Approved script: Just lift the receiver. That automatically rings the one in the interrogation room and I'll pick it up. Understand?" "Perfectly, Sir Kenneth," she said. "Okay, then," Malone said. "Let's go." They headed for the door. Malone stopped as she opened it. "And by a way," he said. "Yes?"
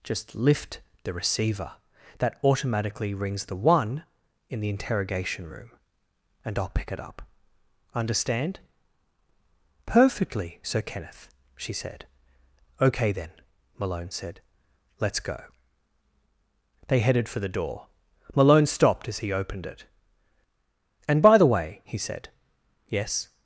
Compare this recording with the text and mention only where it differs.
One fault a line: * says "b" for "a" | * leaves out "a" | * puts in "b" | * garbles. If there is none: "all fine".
* says "he" for "she"
* says "the" for "a"